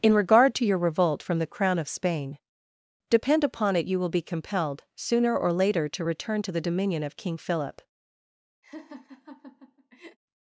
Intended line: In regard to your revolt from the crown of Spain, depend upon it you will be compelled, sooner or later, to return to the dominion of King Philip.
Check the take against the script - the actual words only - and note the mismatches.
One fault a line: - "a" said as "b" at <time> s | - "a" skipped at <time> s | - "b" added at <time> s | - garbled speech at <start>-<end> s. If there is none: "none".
none